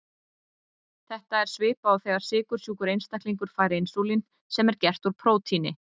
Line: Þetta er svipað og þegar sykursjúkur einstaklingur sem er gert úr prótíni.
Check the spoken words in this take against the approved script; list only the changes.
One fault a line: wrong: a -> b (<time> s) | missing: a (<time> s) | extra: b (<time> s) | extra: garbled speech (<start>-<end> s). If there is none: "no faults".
extra: fær insúlín (3.6 s)